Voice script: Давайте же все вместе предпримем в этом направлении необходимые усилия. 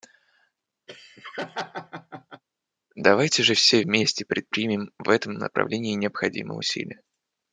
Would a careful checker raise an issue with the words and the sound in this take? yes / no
yes